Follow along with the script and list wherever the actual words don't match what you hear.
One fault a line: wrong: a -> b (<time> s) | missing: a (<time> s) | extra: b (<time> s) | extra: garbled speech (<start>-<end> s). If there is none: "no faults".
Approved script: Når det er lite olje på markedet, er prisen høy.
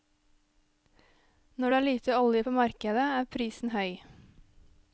no faults